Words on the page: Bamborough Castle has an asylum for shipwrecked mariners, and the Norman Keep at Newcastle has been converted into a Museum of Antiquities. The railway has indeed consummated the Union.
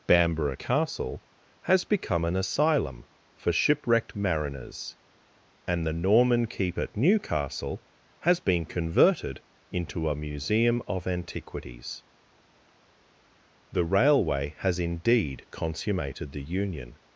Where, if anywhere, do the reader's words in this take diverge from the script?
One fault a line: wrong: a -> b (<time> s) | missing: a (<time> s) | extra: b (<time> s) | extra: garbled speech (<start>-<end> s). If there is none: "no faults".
extra: become (1.8 s)